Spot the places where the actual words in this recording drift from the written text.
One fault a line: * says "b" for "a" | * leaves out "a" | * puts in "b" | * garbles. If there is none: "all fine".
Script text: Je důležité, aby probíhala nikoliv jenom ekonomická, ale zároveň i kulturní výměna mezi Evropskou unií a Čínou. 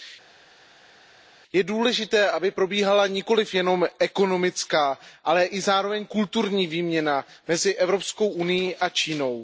all fine